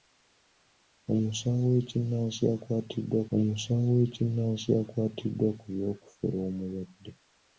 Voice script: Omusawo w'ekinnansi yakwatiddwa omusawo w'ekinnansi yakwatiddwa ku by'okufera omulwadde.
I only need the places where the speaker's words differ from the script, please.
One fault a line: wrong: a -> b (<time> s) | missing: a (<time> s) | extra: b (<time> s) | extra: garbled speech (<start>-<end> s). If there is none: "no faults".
no faults